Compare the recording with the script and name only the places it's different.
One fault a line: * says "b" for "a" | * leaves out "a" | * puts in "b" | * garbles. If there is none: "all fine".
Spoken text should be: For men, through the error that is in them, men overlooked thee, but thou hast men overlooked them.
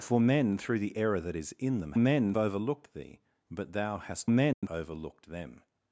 all fine